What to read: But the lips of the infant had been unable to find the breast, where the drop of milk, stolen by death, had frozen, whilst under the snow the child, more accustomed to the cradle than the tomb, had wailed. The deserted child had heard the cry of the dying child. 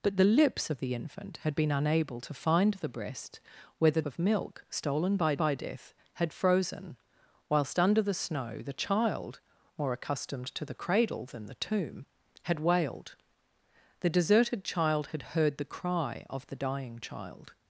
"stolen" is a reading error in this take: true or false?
false